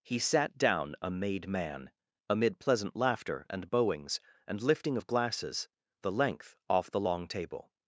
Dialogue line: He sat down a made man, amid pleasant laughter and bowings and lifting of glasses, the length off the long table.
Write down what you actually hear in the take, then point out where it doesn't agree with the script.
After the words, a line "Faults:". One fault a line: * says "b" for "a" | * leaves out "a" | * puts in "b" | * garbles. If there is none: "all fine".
He sat down a made man, amid pleasant laughter and bowings and lifting of glasses, the length off the long table.
Faults:
all fine